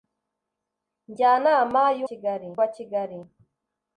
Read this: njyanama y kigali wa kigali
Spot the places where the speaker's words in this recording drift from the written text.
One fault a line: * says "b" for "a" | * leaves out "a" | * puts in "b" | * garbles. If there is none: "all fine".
all fine